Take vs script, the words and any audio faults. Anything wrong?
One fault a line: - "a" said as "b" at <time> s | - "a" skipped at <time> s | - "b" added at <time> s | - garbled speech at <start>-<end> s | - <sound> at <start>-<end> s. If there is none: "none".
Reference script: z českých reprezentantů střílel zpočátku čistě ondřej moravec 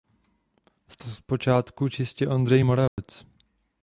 - "českých reprezentantů střílel" skipped at 1.0 s
- dropout at 2.9-3.0 s